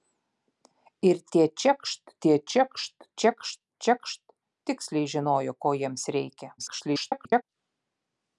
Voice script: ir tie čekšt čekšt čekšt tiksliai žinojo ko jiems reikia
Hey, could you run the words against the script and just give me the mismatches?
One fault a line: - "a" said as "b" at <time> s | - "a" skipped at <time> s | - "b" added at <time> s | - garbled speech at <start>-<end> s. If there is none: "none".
- "tie čekšt" added at 2.2 s
- garbled speech at 6.6-7.4 s